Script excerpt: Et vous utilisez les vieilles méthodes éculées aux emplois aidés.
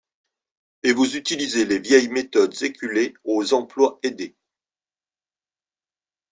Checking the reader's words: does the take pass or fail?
pass